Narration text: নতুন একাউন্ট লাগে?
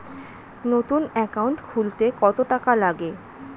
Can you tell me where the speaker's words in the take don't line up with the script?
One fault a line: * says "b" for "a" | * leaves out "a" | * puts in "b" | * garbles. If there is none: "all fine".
* puts in "খুলতে কত টাকা"